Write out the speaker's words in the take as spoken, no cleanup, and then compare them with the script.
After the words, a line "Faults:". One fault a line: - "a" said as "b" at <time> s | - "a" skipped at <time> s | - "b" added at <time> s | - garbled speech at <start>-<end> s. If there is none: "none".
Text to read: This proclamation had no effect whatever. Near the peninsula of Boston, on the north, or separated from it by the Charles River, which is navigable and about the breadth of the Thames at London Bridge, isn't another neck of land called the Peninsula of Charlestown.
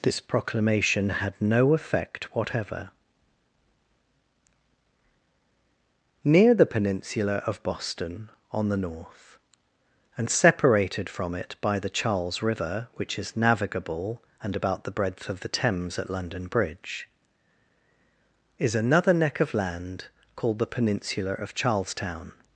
This proclamation had no effect whatever. Near the peninsula of Boston, on the north, and separated from it by the Charles River, which is navigable and about the breadth of the Thames at London Bridge, is another neck of land called the Peninsula of Charlestown.
Faults:
- "or" said as "and" at 10.2 s
- "isn't" said as "is" at 18.6 s